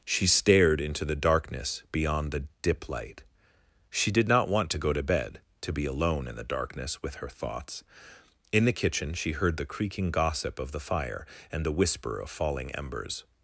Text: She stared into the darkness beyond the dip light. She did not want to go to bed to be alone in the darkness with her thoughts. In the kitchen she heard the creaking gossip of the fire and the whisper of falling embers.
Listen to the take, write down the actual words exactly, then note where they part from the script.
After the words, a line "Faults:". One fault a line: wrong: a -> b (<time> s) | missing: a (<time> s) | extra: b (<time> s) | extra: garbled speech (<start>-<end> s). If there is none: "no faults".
She stared into the darkness beyond the dip light. She did not want to go to bed to be alone in the darkness with her thoughts. In the kitchen she heard the creaking gossip of the fire and the whisper of falling embers.
Faults:
no faults